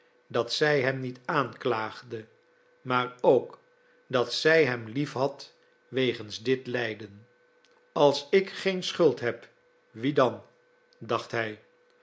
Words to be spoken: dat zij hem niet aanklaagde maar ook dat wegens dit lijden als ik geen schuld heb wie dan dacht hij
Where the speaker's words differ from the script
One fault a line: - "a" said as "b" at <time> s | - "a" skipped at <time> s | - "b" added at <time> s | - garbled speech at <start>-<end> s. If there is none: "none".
- "zij hem liefhad" added at 4.3 s